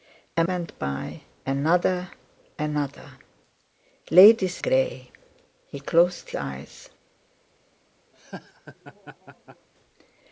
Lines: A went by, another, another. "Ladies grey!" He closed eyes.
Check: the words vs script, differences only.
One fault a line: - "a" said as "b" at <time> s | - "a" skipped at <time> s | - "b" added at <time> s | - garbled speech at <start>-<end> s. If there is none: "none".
none